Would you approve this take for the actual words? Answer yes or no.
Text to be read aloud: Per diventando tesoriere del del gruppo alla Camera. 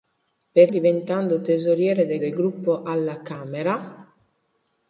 yes